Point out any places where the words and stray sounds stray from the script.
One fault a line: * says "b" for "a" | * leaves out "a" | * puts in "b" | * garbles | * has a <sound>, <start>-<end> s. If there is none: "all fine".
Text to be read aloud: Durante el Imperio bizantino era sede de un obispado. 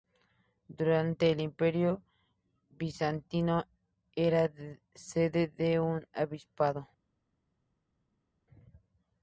all fine